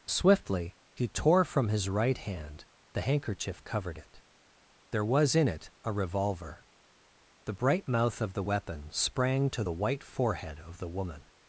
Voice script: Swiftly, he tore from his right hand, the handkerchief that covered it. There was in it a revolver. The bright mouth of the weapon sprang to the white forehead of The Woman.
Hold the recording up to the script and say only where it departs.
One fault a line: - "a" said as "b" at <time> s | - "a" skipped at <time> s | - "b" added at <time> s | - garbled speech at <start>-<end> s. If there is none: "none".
- "that" skipped at 3.6 s